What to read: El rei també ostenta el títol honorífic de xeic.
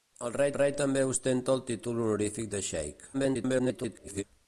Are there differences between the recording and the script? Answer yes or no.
yes